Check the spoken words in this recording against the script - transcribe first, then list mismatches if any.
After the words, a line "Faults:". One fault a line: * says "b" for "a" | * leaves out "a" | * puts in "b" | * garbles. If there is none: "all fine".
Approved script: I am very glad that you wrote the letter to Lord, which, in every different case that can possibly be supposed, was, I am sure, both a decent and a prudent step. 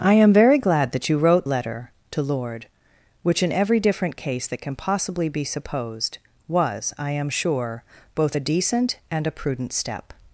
I am very glad that you wrote letter to Lord, which, in every different case that can possibly be supposed, was, I am sure, both a decent and a prudent step.
Faults:
* leaves out "the"